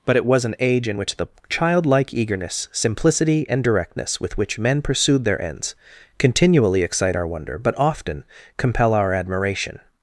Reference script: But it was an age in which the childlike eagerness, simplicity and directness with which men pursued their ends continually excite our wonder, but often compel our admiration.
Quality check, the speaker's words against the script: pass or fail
pass